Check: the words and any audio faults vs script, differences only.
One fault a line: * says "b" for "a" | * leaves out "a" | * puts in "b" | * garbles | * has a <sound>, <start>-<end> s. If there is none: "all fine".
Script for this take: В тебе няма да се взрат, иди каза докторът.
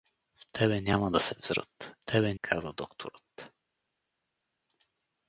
* says "тебе" for "иди"